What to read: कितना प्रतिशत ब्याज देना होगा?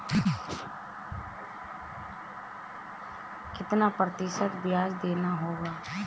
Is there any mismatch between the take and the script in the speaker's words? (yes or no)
no